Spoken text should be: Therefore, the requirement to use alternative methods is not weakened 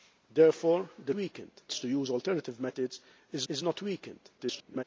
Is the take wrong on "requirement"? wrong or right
wrong